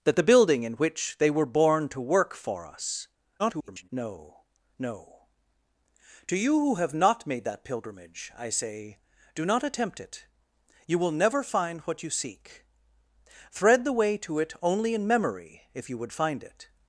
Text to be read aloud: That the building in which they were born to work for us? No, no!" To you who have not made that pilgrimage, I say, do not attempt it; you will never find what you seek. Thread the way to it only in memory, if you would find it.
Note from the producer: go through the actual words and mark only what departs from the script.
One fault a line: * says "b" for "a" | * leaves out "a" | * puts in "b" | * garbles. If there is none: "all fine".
* garbles